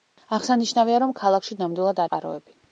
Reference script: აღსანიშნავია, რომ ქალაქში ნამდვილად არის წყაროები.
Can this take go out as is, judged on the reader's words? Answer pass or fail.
fail